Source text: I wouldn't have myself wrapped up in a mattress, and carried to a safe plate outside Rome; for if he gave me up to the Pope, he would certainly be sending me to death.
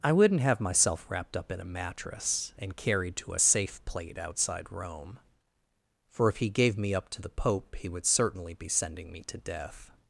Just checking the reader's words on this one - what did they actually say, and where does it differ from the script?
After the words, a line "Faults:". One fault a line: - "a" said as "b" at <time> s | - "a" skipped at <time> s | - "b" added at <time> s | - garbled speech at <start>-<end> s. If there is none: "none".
I wouldn't have myself wrapped up in a mattress, and carried to a safe plate outside Rome; for if he gave me up to the Pope, he would certainly be sending me to death.
Faults:
none